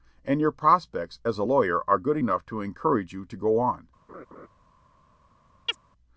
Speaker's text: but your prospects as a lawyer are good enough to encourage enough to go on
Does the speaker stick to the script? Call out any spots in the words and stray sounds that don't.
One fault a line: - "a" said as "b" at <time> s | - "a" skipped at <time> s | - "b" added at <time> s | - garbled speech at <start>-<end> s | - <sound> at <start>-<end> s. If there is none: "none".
- "but" said as "and" at 0.2 s
- "enough" said as "you" at 3.1 s
- laugh at 4.1-4.5 s
- chirp at 5.7-5.8 s